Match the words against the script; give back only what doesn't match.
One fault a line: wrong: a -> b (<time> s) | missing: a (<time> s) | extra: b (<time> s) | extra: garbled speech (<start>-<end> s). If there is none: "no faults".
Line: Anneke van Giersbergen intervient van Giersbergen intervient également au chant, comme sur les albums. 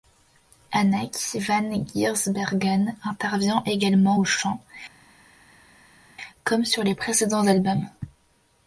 missing: van Giersbergen intervient (3.6 s)
extra: précédents (6.9 s)